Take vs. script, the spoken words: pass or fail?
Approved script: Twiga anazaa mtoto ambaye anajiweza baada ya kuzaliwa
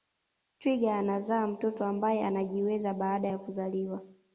pass